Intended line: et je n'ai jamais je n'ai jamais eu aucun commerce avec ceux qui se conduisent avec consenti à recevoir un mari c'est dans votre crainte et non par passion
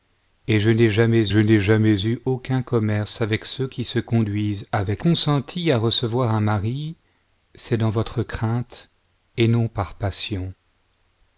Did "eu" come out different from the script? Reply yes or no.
no